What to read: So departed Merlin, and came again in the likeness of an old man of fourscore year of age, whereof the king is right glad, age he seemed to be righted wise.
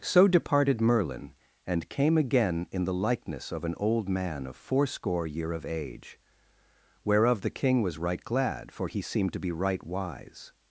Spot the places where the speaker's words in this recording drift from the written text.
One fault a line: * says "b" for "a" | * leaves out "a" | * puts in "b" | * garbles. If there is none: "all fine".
* says "was" for "is"
* says "for" for "age"
* says "right" for "righted"